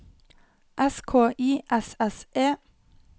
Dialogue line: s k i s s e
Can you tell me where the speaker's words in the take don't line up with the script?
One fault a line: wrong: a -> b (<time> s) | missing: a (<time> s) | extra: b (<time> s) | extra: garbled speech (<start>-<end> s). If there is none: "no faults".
no faults